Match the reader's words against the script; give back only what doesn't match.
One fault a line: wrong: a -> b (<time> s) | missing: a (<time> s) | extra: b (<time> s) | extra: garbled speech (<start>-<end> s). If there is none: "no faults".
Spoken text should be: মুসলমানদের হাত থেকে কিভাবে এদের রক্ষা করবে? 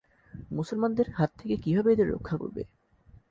no faults